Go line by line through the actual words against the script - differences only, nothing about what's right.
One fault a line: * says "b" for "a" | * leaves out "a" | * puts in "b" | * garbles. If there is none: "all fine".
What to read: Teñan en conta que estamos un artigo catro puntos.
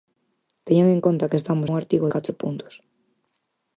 all fine